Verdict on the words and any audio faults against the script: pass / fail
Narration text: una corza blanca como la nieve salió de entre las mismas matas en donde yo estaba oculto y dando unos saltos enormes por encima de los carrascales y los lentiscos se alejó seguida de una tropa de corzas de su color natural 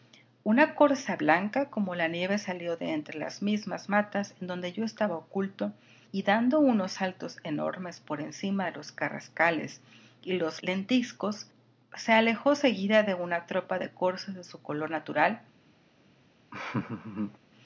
fail